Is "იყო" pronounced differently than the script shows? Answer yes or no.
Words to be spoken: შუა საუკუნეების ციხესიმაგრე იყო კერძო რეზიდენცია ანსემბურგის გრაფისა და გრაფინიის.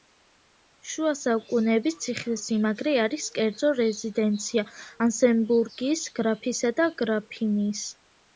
yes